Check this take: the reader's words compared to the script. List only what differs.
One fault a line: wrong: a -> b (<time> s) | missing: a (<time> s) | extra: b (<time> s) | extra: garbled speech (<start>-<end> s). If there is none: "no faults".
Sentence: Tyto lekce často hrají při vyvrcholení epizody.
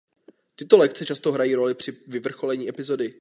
extra: roli (1.5 s)